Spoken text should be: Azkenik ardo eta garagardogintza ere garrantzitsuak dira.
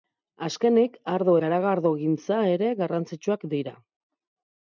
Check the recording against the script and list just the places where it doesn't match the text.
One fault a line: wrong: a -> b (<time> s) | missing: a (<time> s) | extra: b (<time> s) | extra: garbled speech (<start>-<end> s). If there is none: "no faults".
missing: eta (1.4 s)